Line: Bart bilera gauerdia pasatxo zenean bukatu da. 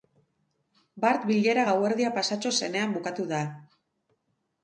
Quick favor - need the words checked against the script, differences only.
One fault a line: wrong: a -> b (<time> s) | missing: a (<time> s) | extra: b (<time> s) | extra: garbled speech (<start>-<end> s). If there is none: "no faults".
no faults